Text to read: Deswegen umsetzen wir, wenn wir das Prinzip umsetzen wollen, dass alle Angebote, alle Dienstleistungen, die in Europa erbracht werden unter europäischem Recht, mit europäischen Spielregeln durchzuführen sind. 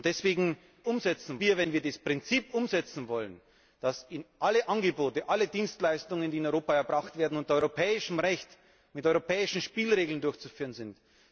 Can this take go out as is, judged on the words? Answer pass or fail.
pass